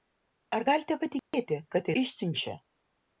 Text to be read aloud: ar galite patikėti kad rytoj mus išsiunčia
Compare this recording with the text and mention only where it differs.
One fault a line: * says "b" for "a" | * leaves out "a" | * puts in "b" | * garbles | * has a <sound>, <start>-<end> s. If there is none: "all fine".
* has a dropout, 1.2-1.3 s
* leaves out "rytoj mus"